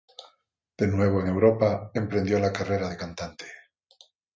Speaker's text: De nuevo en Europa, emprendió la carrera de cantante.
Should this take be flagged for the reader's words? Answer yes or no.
no